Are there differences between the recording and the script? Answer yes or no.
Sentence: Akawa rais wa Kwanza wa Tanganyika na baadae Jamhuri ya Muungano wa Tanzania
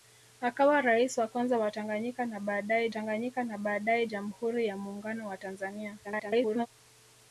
yes